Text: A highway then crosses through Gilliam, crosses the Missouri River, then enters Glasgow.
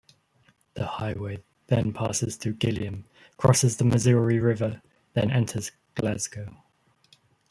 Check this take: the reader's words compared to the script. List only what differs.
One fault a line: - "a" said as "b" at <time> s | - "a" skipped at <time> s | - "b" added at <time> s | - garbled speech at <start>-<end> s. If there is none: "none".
- "A" said as "The" at 0.7 s
- "crosses" said as "passes" at 1.9 s